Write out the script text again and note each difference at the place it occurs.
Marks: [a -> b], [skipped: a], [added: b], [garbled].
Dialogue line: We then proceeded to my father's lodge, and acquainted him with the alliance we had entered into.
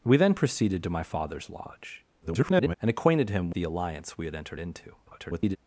We then proceeded to my father's lodge, [garbled] and acquainted him [skipped: with] the alliance we had entered into. [garbled]